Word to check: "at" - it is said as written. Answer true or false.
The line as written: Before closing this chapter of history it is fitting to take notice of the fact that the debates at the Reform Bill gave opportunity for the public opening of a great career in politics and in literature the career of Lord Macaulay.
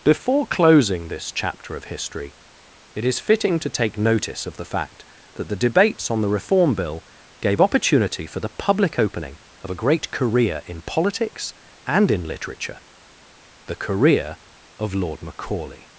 false